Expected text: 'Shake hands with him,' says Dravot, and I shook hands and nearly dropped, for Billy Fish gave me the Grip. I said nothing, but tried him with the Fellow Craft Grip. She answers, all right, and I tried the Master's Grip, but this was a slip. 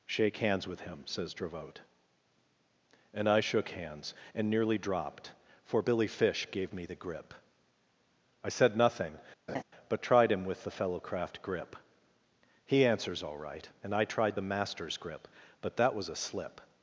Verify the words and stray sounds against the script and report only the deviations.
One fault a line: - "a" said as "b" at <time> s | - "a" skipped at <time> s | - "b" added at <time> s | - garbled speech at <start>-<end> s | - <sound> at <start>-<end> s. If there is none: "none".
- laugh at 9.5-9.6 s
- "She" said as "He" at 12.6 s
- "this" said as "that" at 15.8 s